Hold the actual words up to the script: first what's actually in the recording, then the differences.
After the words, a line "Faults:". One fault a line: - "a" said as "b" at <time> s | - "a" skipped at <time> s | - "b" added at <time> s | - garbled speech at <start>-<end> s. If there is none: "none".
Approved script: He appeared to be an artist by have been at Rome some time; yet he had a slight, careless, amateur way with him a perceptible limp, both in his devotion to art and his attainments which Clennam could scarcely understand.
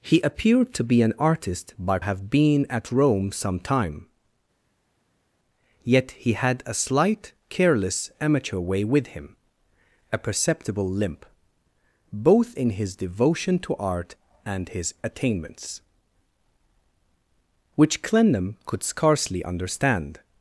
He appeared to be an artist by have been at Rome some time; yet he had a slight, careless, amateur way with him a perceptible limp, both in his devotion to art and his attainments which Clennam could scarcely understand.
Faults:
none